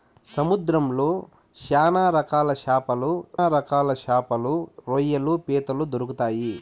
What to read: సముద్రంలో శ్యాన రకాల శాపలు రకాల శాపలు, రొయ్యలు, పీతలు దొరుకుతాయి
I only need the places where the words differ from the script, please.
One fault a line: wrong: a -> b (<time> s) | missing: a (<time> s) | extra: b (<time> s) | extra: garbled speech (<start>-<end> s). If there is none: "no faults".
no faults